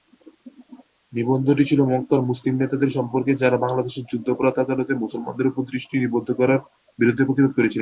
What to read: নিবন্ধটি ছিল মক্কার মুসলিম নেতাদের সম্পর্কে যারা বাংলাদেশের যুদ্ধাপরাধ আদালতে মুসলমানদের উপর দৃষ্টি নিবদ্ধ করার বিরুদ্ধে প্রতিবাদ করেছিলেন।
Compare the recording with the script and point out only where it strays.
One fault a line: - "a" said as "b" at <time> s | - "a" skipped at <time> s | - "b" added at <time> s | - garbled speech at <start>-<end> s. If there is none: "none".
none